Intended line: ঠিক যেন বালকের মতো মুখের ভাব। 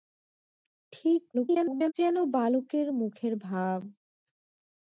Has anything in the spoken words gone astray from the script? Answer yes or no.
yes